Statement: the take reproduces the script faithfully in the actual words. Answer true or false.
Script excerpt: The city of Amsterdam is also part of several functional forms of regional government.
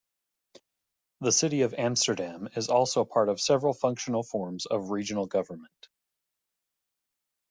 true